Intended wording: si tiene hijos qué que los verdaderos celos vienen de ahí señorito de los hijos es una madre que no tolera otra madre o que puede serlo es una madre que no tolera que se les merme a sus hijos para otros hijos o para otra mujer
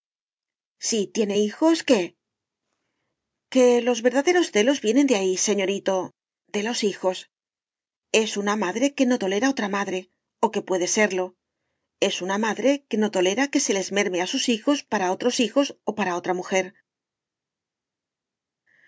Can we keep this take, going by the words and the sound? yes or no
yes